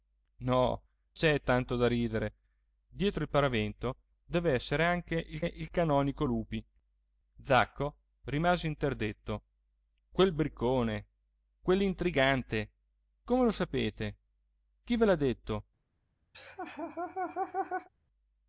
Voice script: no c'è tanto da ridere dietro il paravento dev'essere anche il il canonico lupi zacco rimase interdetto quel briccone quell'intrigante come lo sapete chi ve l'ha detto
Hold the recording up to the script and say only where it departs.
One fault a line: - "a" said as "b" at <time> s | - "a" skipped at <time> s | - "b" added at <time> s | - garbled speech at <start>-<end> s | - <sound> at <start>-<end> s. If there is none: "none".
- laugh at 16.3-17.9 s